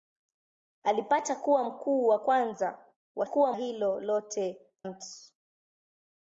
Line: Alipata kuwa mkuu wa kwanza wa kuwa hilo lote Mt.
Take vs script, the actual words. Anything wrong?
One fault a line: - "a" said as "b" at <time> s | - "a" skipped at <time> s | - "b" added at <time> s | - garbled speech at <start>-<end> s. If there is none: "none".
none